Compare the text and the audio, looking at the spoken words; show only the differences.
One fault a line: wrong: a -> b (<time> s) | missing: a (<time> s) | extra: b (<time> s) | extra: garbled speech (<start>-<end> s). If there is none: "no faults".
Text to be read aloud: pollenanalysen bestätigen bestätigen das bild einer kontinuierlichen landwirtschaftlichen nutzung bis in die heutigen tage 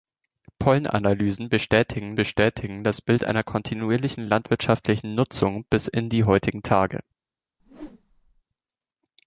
no faults